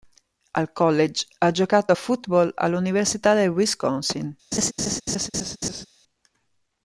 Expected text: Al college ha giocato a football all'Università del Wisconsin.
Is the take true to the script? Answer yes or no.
yes